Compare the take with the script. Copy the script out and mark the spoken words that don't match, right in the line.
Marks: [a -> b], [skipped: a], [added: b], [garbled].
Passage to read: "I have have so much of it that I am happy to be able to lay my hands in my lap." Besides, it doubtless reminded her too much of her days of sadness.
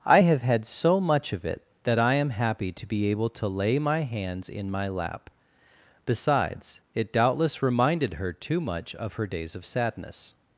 "I have [have -> had] so much of it that I am happy to be able to lay my hands in my lap." Besides, it doubtless reminded her too much of her days of sadness.